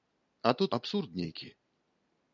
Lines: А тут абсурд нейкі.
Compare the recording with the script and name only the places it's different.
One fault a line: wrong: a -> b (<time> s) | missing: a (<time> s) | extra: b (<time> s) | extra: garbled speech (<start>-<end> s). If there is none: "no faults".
no faults